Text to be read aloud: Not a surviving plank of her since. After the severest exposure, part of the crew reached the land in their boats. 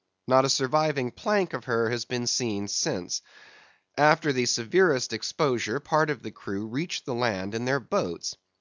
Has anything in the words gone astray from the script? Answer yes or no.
yes